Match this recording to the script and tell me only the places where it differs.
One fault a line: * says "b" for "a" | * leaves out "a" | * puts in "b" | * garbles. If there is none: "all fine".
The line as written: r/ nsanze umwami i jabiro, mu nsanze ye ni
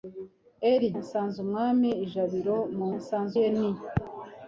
all fine